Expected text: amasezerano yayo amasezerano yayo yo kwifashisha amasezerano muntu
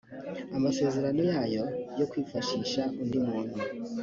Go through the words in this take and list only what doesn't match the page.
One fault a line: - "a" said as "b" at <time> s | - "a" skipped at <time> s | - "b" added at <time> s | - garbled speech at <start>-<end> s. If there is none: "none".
- "amasezerano yayo" skipped at 1.6 s
- "amasezerano" said as "undi" at 3.0 s